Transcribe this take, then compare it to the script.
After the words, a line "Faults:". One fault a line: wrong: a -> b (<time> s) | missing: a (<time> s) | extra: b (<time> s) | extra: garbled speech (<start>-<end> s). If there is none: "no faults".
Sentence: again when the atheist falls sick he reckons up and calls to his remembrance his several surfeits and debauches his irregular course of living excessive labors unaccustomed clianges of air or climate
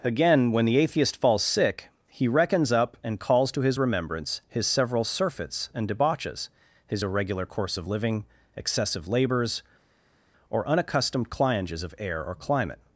again when the atheist falls sick he reckons up and calls to his remembrance his several surfeits and debauches his irregular course of living excessive labors or unaccustomed clianges of air or climate
Faults:
extra: or (10.5 s)